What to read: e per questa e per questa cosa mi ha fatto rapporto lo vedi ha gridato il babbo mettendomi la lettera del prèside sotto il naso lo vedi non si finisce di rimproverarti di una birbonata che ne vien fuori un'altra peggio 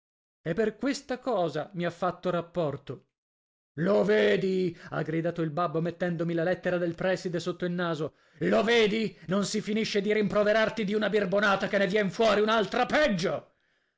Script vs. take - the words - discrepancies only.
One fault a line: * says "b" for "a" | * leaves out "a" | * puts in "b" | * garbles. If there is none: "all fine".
* leaves out "e per questa"